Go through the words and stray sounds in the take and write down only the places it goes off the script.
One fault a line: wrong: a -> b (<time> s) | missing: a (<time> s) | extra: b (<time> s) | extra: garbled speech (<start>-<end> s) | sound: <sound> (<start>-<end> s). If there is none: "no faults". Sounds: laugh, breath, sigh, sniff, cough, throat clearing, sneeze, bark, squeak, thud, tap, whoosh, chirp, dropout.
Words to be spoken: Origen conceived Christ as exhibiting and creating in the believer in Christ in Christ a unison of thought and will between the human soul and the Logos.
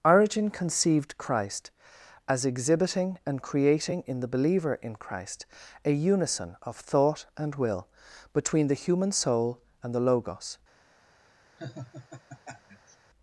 missing: in Christ (5.4 s)
sound: laugh (11.6-13.0 s)